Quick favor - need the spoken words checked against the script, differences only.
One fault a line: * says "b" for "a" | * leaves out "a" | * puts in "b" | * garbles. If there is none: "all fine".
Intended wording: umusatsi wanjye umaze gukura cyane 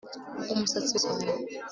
* leaves out "wanjye umaze gukura"